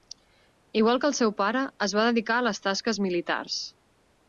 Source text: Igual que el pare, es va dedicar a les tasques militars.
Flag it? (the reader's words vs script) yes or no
yes